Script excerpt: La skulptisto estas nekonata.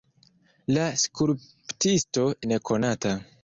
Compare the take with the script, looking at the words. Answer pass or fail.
fail